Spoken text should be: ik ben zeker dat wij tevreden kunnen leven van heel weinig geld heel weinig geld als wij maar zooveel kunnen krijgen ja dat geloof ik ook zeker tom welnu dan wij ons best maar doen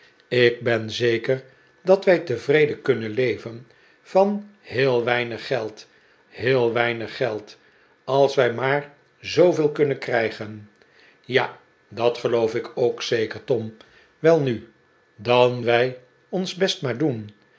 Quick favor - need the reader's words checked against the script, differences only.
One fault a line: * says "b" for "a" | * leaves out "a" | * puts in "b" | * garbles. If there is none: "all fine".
all fine